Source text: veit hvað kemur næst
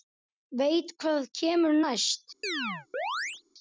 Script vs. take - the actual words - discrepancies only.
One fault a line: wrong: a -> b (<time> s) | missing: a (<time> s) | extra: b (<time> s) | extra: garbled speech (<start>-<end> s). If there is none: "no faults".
no faults